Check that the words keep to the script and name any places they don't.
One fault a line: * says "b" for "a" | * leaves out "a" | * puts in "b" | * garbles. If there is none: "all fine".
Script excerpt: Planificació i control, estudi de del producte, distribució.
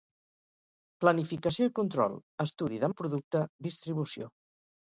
all fine